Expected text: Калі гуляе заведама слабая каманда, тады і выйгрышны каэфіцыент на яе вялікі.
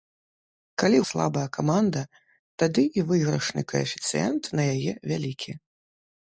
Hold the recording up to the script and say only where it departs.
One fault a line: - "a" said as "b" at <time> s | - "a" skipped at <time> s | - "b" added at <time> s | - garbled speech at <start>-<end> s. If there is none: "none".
- "гуляе заведама" skipped at 1.0 s